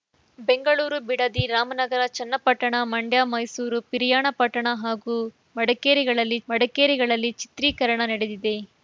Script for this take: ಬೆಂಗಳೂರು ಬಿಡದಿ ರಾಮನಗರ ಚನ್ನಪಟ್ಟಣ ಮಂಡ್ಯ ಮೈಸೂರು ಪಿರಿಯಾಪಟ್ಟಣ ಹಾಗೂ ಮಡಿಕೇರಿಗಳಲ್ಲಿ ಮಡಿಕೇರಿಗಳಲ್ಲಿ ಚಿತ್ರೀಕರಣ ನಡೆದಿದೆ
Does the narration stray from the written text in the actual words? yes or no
no